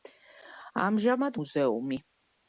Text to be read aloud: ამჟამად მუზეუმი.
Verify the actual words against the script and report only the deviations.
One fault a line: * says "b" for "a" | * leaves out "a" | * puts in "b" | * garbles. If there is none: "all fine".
all fine